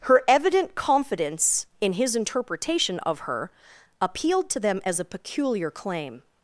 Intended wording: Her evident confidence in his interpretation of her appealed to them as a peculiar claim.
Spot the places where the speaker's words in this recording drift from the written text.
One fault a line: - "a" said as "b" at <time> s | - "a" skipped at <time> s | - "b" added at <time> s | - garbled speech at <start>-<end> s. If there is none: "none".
none